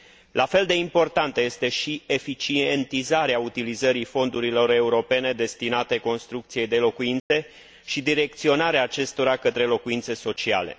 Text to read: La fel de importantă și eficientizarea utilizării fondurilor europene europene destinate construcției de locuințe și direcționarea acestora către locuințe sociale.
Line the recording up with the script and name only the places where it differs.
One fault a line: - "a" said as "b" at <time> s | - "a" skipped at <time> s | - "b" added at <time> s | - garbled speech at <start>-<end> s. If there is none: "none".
- "este" added at 1.4 s
- "europene" skipped at 5.3 s